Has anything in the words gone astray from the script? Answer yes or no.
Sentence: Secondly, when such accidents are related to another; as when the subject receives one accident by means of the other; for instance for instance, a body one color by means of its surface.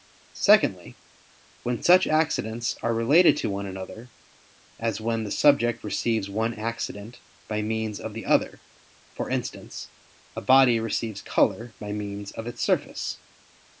yes